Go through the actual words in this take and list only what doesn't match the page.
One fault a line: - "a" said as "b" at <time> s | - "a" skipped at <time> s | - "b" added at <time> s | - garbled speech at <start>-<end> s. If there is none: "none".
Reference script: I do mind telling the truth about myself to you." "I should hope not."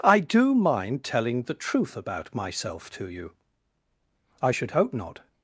none